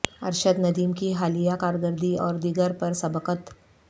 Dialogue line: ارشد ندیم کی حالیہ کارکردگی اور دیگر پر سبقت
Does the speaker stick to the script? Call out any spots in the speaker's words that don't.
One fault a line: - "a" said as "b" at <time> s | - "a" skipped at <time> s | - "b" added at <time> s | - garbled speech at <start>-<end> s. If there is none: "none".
none